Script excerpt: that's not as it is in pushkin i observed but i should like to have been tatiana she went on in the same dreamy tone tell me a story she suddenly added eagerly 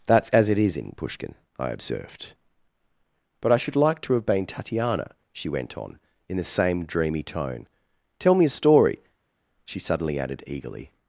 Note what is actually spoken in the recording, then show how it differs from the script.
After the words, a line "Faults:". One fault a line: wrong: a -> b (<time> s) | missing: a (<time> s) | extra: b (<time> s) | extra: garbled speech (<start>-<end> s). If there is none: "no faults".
that's as it is in pushkin i observed but i should like to have been tatiana she went on in the same dreamy tone tell me a story she suddenly added eagerly
Faults:
missing: not (0.3 s)